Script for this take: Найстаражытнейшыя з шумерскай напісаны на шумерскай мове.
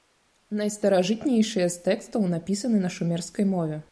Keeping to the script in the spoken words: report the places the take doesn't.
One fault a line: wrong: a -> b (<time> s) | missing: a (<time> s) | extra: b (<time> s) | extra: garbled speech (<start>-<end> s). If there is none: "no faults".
wrong: шумерскай -> тэкстаў (1.9 s)